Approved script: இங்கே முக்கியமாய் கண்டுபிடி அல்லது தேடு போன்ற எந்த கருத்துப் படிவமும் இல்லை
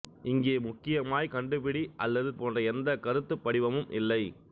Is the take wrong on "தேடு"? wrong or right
wrong